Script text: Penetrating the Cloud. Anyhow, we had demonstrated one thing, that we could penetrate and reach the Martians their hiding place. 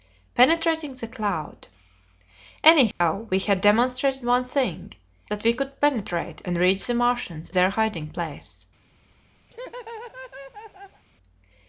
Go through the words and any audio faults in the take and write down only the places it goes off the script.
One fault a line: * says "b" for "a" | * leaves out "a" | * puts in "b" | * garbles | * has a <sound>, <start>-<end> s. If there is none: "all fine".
* has a dropout, 2.9-3.0 s
* has a laugh, 9.5-11.0 s